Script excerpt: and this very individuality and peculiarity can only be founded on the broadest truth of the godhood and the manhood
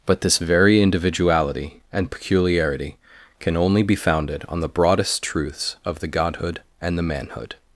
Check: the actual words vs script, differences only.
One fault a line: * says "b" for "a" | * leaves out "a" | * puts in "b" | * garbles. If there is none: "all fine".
* says "but" for "and"
* says "truths" for "truth"